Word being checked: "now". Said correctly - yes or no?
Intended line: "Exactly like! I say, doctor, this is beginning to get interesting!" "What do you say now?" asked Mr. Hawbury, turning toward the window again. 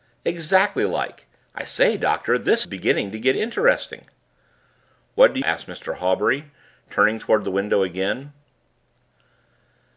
no